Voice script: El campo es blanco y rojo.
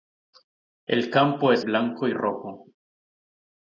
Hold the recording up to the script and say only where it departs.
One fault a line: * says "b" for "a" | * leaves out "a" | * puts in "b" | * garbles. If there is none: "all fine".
all fine